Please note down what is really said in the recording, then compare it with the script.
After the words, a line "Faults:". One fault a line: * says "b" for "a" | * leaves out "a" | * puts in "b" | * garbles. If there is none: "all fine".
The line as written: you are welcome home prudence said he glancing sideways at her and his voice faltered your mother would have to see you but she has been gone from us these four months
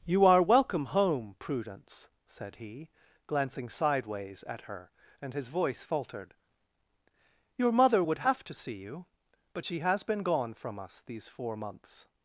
you are welcome home prudence said he glancing sideways at her and his voice faltered your mother would have to see you but she has been gone from us these four months
Faults:
all fine